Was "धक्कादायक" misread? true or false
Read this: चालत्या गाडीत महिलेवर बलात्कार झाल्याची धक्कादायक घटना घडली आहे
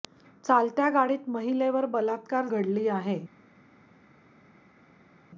true